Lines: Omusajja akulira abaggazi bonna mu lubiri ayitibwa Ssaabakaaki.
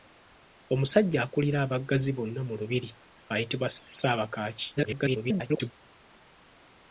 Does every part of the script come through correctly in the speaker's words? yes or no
no